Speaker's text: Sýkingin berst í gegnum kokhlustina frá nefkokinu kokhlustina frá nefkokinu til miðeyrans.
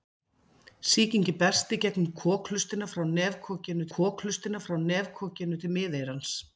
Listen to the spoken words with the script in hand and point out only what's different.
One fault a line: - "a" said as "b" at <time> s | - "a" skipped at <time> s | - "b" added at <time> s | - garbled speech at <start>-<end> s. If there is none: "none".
none